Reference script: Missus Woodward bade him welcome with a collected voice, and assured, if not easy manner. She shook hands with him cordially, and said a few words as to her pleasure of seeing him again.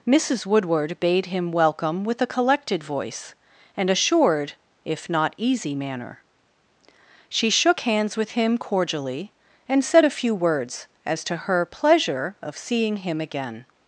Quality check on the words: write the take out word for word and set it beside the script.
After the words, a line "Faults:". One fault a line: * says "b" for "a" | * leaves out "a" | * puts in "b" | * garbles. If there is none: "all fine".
Missus Woodward bade him welcome with a collected voice, and assured, if not easy manner. She shook hands with him cordially, and said a few words as to her pleasure of seeing him again.
Faults:
all fine